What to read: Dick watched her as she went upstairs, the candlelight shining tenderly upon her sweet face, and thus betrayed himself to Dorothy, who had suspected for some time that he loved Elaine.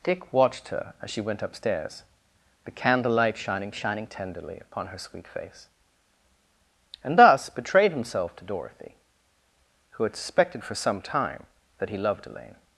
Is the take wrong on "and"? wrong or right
right